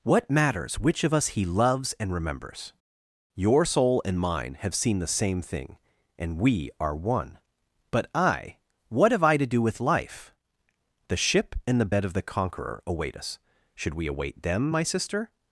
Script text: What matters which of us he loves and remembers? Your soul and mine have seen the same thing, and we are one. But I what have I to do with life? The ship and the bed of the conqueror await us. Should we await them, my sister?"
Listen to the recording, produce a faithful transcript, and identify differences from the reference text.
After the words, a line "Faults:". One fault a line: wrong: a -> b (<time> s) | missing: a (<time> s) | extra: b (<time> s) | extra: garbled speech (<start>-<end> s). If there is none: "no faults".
What matters which of us he loves and remembers? Your soul and mine have seen the same thing, and we are one. But I what have I to do with life? The ship and the bed of the conqueror await us. Should we await them, my sister?"
Faults:
no faults